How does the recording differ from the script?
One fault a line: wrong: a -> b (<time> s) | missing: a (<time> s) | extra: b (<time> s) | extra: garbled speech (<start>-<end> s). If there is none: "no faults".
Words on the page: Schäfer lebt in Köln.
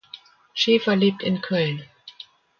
no faults